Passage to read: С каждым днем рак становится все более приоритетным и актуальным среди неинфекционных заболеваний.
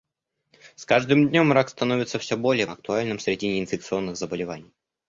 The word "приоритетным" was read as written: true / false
false